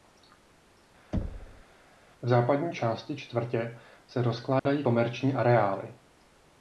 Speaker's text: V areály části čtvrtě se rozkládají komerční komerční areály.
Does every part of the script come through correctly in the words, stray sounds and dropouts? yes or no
no